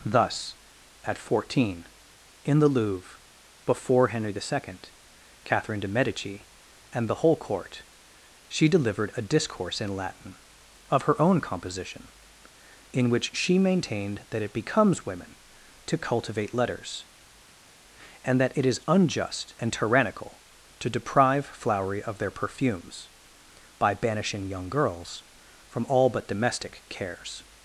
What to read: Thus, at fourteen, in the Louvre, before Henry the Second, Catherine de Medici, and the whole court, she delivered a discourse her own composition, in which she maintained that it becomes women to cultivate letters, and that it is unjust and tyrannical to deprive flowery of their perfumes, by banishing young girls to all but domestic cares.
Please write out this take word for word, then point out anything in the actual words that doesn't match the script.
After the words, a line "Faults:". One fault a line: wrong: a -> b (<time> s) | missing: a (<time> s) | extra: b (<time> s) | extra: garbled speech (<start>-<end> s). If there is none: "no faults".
Thus, at fourteen, in the Louvre, before Henry the Second, Catherine de Medici, and the whole court, she delivered a discourse in Latin of her own composition, in which she maintained that it becomes women to cultivate letters, and that it is unjust and tyrannical to deprive flowery of their perfumes, by banishing young girls from all but domestic cares.
Faults:
extra: in Latin of (9.8 s)
wrong: to -> from (25.7 s)